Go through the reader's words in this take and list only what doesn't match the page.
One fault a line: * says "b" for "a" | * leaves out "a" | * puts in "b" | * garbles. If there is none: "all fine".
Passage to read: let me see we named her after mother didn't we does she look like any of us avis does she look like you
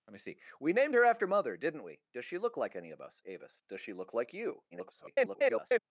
* garbles